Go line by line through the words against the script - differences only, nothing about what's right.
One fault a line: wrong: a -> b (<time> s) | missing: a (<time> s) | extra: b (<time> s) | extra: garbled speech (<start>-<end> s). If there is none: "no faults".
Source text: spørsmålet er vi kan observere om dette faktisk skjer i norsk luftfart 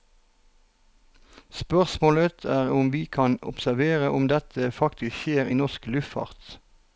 extra: om (2.8 s)